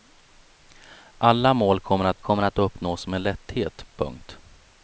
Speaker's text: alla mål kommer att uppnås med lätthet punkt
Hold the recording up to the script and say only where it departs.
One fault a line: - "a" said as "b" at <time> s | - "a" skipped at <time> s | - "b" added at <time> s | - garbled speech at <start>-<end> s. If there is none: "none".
- "kommer att" added at 2.2 s